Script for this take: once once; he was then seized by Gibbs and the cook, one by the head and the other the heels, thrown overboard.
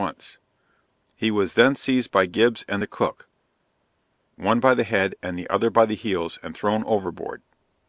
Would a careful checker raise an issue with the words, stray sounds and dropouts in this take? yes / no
yes